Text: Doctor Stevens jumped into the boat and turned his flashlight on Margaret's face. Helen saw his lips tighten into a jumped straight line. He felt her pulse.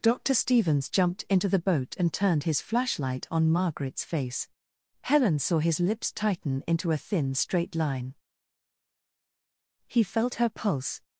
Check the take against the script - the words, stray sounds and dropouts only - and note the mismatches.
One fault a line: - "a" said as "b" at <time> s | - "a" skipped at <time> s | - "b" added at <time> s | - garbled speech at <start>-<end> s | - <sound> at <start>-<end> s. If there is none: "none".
- "jumped" said as "thin" at 7.0 s